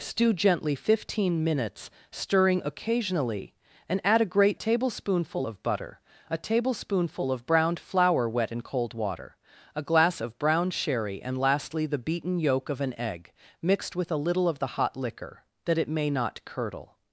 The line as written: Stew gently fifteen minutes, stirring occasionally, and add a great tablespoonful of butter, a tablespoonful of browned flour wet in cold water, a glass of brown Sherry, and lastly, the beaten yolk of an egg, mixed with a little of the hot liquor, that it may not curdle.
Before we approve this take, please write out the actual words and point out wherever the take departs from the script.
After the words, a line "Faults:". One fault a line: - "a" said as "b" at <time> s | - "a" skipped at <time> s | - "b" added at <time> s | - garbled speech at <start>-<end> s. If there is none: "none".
Stew gently fifteen minutes, stirring occasionally, and add a great tablespoonful of butter, a tablespoonful of browned flour wet in cold water, a glass of brown Sherry, and lastly, the beaten yolk of an egg, mixed with a little of the hot liquor, that it may not curdle.
Faults:
none